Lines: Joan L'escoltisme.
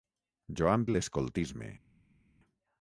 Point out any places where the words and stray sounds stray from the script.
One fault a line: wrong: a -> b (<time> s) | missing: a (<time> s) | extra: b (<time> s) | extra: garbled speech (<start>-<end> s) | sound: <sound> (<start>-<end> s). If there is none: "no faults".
no faults